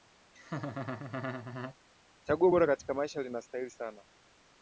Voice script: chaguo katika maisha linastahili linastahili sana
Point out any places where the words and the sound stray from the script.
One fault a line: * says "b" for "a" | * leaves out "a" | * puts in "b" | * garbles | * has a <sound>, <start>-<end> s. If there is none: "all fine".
* has a laugh, 0.3-1.8 s
* puts in "bora"
* leaves out "linastahili"